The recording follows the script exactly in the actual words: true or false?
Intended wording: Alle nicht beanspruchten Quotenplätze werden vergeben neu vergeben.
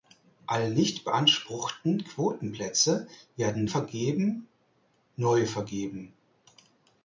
true